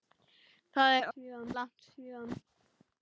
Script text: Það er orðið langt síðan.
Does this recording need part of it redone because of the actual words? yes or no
yes